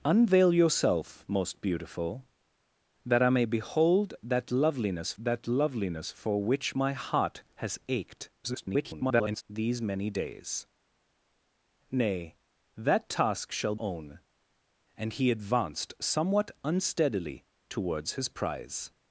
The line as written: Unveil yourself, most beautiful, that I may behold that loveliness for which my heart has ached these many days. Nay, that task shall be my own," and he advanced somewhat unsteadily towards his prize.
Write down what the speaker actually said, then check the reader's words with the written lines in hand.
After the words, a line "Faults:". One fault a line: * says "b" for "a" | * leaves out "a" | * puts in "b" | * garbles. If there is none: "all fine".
Unveil yourself, most beautiful, that I may behold that loveliness that loveliness for which my heart has ached [garbled] these many days. Nay, that task shall own," and he advanced somewhat unsteadily towards his prize.
Faults:
* puts in "that loveliness"
* garbles
* leaves out "be my"